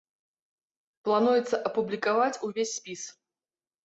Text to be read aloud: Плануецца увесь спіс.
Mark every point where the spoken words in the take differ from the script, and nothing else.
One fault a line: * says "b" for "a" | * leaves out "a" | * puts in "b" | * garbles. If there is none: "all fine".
* puts in "апублікаваць"